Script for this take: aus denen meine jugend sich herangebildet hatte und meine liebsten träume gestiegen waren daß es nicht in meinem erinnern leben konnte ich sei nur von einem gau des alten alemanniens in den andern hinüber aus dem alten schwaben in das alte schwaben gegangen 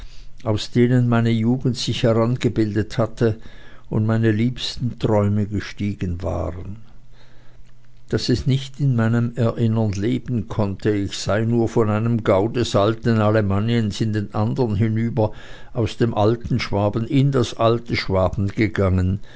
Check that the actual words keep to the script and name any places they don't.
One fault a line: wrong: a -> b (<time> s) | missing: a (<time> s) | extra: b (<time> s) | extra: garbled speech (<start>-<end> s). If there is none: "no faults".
no faults